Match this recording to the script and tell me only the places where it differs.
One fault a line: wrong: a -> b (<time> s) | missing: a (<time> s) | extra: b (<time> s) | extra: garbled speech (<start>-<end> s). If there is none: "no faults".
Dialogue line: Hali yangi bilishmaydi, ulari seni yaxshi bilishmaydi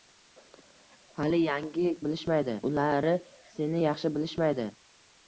no faults